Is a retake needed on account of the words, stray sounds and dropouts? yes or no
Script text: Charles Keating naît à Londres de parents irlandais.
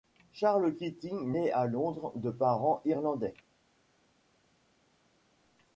no